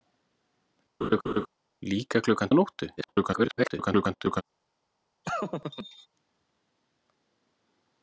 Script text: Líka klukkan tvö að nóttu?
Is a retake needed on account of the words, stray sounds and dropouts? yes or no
yes